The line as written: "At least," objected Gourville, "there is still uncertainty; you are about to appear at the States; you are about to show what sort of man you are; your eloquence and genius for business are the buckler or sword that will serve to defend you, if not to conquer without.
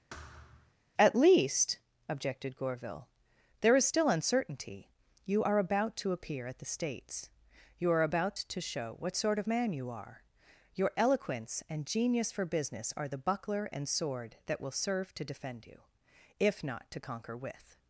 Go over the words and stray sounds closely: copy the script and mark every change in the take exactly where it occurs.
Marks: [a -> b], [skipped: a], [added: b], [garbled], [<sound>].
[thud] "At least," objected Gourville, "there is still uncertainty; you are about to appear at the States; you are about to show what sort of man you are; your eloquence and genius for business are the buckler [or -> and] sword that will serve to defend you, if not to conquer [without. -> with]